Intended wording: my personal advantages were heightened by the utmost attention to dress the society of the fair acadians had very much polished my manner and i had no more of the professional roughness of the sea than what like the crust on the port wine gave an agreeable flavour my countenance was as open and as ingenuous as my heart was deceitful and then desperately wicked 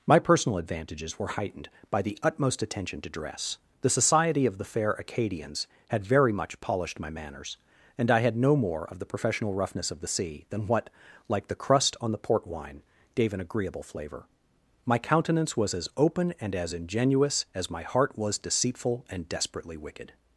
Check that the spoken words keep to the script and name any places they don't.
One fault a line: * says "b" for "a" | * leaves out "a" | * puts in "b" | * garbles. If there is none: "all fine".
* says "manners" for "manner"
* leaves out "then"